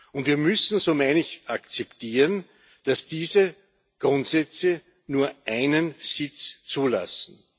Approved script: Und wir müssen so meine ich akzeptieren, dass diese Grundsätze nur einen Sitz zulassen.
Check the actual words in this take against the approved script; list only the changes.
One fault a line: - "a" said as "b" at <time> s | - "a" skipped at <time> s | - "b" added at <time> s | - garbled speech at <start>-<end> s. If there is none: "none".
none